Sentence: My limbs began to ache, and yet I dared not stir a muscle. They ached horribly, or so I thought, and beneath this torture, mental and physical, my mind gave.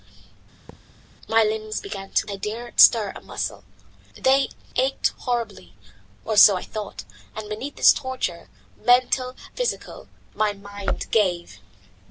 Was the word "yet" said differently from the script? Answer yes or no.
yes